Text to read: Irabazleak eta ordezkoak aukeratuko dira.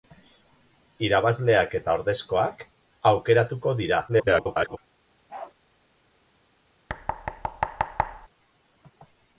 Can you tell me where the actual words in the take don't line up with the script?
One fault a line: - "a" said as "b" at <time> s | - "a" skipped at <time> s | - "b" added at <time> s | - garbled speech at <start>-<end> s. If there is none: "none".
- garbled speech at 4.1-4.8 s